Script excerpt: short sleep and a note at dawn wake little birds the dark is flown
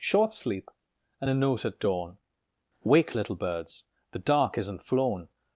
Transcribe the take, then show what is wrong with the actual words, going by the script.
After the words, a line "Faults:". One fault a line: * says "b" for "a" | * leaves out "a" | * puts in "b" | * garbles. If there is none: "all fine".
short sleep and a note at dawn wake little birds the dark isn't flown
Faults:
* says "isn't" for "is"